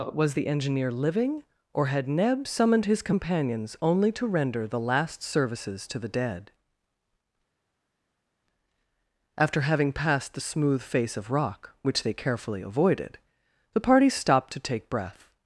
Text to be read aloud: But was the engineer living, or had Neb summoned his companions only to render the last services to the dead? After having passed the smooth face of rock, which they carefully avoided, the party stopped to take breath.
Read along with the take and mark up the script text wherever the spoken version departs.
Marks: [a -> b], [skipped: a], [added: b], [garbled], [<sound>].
[skipped: But] was the engineer living, or had Neb summoned his companions only to render the last services to the dead? After having passed the smooth face of rock, which they carefully avoided, the party stopped to take breath.